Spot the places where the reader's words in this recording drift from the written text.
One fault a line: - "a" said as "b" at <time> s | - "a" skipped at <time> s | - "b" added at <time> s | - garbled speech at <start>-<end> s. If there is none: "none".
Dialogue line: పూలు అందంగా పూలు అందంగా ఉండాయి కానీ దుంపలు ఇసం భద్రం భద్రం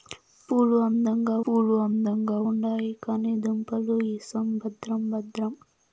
none